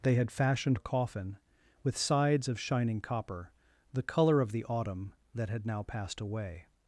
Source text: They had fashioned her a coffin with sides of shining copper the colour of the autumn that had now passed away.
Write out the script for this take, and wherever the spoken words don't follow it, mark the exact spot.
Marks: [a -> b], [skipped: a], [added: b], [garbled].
They had fashioned [skipped: her] a coffin with sides of shining copper the colour of the autumn that had now passed away.